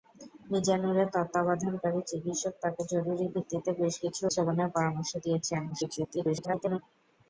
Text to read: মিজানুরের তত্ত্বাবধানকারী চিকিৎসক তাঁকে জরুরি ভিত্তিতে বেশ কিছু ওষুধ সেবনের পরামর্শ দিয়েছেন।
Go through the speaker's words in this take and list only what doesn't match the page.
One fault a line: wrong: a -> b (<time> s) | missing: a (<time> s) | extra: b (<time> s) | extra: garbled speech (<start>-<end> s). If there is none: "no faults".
missing: ওষুধ (4.2 s)
extra: garbled speech (5.7-6.8 s)